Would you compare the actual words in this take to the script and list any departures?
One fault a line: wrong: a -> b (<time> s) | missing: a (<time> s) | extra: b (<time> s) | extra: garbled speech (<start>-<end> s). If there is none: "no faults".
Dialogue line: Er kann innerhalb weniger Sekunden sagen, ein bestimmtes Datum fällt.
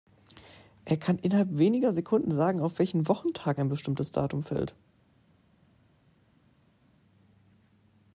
extra: auf welchen Wochentag (2.6 s)